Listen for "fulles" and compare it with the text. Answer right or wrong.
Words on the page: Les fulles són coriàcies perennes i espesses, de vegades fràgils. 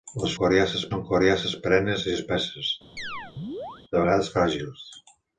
wrong